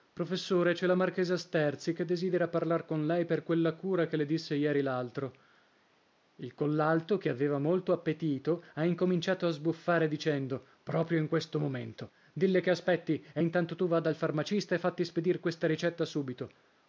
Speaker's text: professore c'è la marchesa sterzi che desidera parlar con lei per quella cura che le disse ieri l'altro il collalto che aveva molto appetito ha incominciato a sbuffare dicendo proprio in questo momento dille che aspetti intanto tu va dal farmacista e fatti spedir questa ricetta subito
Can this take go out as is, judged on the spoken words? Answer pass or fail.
fail